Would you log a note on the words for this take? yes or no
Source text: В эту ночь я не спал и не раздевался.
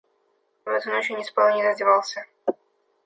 no